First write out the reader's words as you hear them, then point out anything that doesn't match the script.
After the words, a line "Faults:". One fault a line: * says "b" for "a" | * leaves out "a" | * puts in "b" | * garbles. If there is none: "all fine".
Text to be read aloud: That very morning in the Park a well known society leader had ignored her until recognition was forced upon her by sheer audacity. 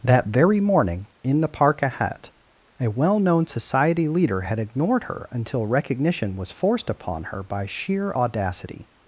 That very morning in the Park ahead a well known society leader had ignored her until recognition was forced upon her by sheer audacity.
Faults:
* puts in "ahead"